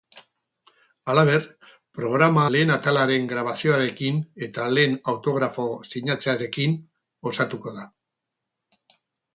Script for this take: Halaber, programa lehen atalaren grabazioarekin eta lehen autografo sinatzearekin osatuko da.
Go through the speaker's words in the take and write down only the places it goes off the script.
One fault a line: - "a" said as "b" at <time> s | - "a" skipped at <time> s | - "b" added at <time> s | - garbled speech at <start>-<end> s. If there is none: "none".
none